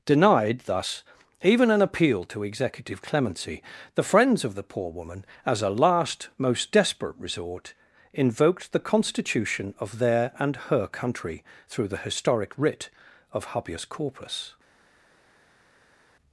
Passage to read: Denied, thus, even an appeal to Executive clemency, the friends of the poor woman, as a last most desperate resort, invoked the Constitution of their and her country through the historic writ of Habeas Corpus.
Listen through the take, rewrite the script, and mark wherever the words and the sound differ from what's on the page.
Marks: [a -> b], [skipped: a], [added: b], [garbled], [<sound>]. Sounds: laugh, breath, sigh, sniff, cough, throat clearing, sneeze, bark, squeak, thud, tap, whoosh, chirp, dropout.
Denied, thus, even an appeal to Executive clemency, the friends of the poor woman, as a last most desperate resort, invoked the Constitution of their and her country through the historic writ of Habeas Corpus.